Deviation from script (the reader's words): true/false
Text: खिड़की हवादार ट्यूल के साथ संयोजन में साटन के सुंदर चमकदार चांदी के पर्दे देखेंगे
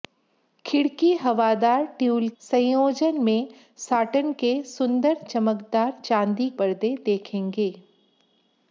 true